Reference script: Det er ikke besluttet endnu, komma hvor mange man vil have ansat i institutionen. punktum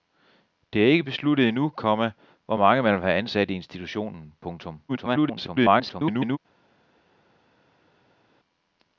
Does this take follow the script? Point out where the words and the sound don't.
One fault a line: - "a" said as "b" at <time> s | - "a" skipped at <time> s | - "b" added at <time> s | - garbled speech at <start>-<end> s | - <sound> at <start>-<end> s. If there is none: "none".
- garbled speech at 4.9-6.4 s